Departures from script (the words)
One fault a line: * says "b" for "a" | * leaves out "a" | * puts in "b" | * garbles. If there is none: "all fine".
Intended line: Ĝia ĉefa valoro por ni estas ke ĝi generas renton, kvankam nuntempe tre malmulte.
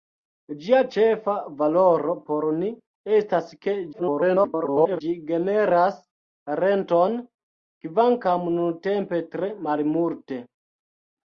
* garbles